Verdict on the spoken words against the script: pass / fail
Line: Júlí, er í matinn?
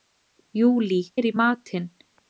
pass